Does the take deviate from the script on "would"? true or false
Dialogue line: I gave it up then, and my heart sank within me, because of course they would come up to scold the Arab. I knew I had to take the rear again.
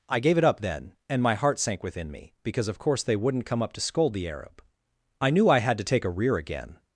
true